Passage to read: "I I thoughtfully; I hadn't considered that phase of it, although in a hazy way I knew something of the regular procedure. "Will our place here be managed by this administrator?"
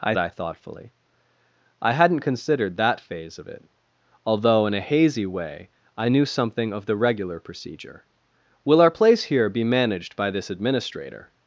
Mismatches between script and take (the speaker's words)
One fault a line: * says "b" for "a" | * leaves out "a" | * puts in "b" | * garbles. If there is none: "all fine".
all fine